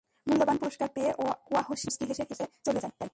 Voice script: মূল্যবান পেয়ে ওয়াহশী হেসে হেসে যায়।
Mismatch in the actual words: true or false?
true